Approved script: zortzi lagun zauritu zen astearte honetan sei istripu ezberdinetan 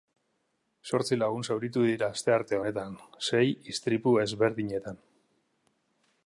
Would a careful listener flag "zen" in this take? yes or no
yes